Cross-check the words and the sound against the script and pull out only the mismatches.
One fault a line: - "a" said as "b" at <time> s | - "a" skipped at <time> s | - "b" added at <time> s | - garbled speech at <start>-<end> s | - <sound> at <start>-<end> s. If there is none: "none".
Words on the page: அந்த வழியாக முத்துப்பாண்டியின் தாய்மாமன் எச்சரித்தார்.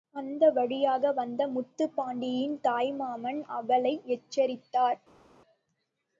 - "வந்த" added at 1.1 s
- "அவளை" added at 3.5 s